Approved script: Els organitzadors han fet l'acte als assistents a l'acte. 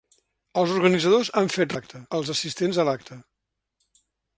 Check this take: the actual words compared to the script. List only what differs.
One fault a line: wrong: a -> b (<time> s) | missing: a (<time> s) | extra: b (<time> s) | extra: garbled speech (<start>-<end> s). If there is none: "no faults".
no faults